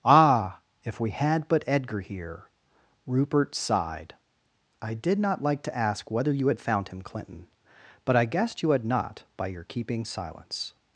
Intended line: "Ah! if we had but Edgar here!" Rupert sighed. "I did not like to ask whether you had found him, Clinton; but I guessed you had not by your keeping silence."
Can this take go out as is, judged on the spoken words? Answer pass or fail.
pass